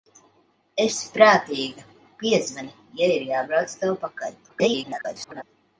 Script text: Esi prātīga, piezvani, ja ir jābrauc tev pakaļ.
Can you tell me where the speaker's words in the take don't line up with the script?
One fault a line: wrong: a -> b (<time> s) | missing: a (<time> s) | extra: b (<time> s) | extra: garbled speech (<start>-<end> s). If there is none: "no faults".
extra: garbled speech (4.5-5.4 s)